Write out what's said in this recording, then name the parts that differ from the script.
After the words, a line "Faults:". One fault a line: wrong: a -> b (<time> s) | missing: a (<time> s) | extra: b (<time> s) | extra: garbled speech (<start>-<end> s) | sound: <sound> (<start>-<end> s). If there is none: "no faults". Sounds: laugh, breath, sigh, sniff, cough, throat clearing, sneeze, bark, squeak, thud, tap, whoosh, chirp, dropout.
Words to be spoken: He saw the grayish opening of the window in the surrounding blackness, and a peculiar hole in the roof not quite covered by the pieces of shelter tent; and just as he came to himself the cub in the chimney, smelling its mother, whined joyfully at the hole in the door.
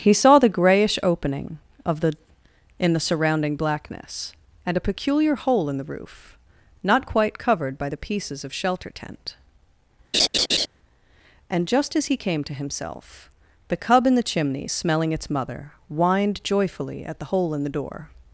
He saw the grayish opening of the in the surrounding blackness, and a peculiar hole in the roof not quite covered by the pieces of shelter tent; and just as he came to himself the cub in the chimney, smelling its mother, whined joyfully at the hole in the door.
Faults:
missing: window (2.1 s)
sound: laugh (10.1-10.7 s)